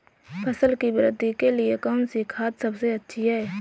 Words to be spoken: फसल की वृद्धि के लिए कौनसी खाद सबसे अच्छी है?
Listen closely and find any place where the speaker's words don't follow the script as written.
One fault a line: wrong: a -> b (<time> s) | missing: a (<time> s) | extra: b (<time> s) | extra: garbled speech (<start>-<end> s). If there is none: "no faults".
no faults